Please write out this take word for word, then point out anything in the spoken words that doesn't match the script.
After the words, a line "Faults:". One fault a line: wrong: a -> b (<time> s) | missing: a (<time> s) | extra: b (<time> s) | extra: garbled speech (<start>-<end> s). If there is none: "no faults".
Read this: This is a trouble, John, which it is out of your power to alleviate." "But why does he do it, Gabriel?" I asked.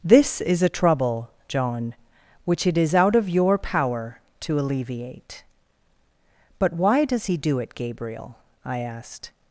This is a trouble, John, which it is out of your power to alleviate." "But why does he do it, Gabriel?" I asked.
Faults:
no faults